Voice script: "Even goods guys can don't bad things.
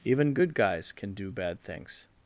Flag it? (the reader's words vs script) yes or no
yes